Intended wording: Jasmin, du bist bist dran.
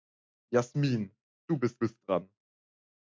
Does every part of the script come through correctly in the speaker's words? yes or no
yes